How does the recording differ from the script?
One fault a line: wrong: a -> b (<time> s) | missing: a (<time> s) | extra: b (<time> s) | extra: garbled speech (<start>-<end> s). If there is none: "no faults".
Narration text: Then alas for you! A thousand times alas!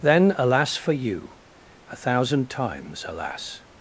no faults